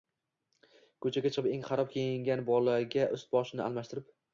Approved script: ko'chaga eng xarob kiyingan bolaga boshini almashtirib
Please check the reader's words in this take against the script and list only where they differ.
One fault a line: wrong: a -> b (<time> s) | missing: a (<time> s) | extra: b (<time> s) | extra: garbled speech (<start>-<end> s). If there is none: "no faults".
extra: chiqib (1.4 s)
extra: ust (3.2 s)